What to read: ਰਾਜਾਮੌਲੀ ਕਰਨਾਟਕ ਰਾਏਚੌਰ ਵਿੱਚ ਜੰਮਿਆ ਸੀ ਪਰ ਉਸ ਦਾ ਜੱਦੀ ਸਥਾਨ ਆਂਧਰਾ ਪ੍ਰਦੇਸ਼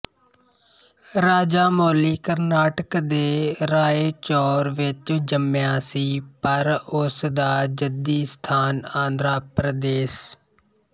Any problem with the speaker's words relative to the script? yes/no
yes